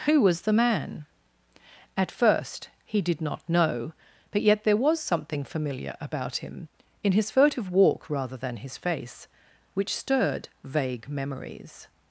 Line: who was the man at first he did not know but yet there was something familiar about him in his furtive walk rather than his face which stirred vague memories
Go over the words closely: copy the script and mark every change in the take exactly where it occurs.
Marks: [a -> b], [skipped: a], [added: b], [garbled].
who was the man at first he did not know but yet there was something familiar about him in his furtive walk rather than his face which stirred vague memories